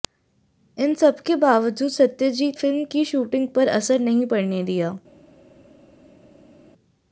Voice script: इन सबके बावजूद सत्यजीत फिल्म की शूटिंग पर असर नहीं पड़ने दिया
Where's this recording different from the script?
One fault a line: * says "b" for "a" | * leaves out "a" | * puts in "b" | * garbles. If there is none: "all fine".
all fine